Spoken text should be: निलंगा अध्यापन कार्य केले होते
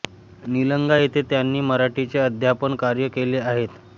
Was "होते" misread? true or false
true